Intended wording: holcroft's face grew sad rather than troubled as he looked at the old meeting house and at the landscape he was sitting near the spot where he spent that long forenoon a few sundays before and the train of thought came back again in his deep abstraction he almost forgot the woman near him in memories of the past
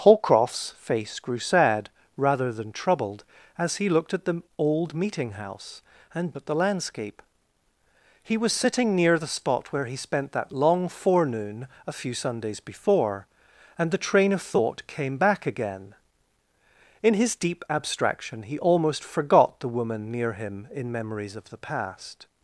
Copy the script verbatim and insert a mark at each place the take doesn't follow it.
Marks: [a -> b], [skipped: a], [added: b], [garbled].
holcroft's face grew sad rather than troubled as he looked at the old meeting house and at the landscape he was sitting near the spot where he spent that long forenoon a few sundays before and the train of thought came back again in his deep abstraction he almost forgot the woman near him in memories of the past